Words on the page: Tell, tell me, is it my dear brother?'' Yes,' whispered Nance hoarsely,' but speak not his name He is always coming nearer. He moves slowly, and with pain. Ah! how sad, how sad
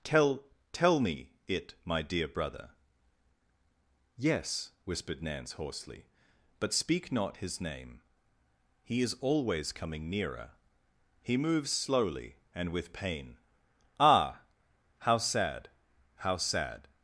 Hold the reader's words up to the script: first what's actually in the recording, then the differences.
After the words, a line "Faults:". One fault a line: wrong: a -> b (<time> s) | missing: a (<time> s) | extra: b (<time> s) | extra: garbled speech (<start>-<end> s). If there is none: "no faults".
Tell, tell me, it my dear brother?'' Yes,' whispered Nance hoarsely,' but speak not his name He is always coming nearer. He moves slowly, and with pain. Ah! how sad, how sad
Faults:
missing: is (1.3 s)